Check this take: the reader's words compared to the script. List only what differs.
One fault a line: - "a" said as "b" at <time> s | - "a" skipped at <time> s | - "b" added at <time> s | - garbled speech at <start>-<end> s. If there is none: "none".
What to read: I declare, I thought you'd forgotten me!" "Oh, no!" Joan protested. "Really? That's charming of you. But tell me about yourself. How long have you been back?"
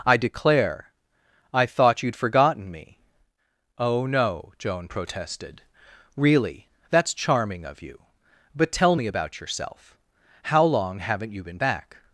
- "have" said as "haven't" at 11.0 s